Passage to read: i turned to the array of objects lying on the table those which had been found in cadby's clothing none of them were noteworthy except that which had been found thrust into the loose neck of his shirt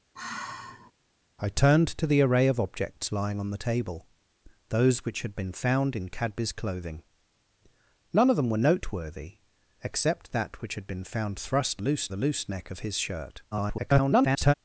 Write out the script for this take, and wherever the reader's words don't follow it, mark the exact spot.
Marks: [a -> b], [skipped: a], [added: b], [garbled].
i turned to the array of objects lying on the table those which had been found in cadby's clothing none of them were noteworthy except that which had been found thrust [into -> loose] the loose neck of his shirt [garbled]